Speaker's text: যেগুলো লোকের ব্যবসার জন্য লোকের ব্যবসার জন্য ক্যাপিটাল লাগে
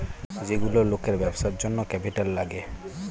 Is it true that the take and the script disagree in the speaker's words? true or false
true